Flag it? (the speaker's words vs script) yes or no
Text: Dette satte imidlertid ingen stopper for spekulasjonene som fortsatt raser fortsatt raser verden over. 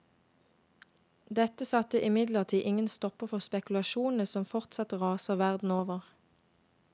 yes